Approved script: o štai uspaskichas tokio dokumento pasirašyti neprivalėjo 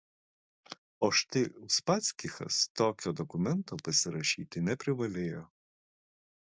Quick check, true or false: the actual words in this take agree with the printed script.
true